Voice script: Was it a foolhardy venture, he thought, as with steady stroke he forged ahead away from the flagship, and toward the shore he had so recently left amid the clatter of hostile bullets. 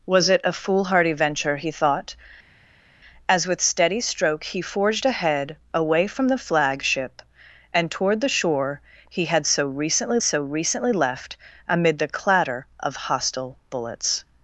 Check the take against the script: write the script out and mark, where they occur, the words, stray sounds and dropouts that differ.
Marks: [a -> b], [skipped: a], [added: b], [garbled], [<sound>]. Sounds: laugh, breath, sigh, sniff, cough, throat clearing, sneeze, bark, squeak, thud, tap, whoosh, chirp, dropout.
Was it a foolhardy venture, he thought, as with steady stroke he forged ahead away from the flagship, and toward the shore he had so recently [added: so recently] left amid the clatter of hostile bullets.